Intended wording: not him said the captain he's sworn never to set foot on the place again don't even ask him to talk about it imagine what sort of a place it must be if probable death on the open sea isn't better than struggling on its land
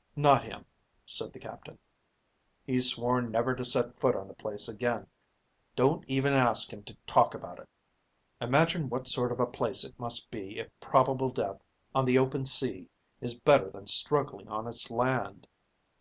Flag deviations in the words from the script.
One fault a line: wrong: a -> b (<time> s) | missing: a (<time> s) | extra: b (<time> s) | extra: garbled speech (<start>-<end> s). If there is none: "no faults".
wrong: isn't -> is (13.2 s)